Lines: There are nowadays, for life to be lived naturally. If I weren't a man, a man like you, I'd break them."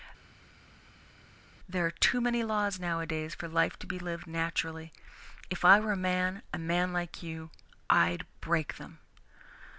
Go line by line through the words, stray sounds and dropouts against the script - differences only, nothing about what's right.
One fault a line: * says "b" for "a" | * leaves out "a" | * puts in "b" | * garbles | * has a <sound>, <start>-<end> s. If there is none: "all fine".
* puts in "too many laws"
* says "were" for "weren't"